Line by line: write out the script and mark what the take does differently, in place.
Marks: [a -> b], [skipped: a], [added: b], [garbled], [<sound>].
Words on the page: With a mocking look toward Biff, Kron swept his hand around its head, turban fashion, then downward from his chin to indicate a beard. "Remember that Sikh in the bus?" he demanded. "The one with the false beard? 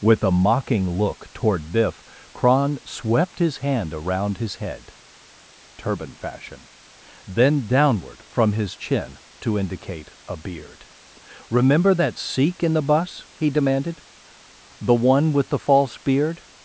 With a mocking look toward Biff, Kron swept his hand around [its -> his] head, turban fashion, then downward from his chin to indicate a beard. "Remember that Sikh in the bus?" he demanded. "The one with the false beard?